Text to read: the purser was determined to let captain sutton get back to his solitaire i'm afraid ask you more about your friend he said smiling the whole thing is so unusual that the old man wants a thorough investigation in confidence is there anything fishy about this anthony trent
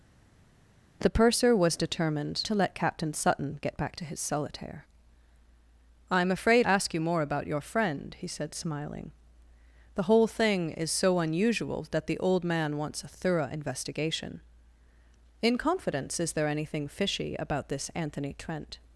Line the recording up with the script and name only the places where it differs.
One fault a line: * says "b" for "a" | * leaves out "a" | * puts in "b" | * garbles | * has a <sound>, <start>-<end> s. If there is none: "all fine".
all fine